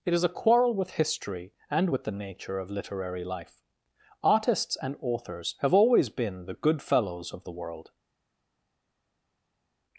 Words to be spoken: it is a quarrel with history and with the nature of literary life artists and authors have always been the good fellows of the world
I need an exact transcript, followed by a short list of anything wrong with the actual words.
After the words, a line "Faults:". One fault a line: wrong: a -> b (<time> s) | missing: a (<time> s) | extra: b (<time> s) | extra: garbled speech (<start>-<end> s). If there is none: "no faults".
it is a quarrel with history and with the nature of literary life artists and authors have always been the good fellows of the world
Faults:
no faults